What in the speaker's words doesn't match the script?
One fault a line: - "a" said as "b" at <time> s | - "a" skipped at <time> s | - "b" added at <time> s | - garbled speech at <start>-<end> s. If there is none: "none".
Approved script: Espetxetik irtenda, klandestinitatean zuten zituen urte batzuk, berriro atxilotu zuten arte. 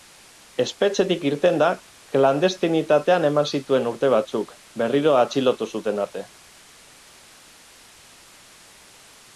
- "zuten" said as "eman" at 3.3 s